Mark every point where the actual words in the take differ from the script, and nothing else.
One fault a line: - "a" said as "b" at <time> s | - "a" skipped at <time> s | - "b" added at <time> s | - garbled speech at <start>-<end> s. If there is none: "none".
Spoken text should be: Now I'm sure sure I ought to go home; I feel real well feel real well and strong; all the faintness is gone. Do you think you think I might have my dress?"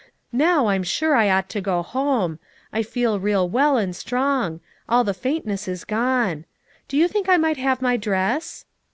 - "sure" skipped at 1.1 s
- "feel real well" skipped at 3.8 s
- "you think" skipped at 7.3 s